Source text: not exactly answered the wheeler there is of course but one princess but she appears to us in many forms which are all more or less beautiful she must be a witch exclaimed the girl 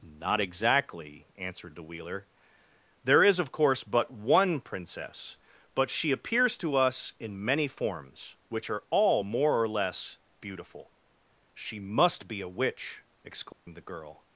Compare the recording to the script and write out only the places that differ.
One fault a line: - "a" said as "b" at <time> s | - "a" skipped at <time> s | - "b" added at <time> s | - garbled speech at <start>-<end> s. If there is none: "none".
none